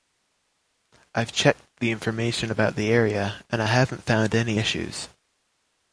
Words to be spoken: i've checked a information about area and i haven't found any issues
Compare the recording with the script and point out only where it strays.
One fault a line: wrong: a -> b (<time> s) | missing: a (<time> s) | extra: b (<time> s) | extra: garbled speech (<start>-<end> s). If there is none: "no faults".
wrong: a -> the (1.8 s)
extra: the (2.8 s)